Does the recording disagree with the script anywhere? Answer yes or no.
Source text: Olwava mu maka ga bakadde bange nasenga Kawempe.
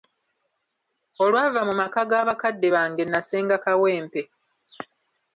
no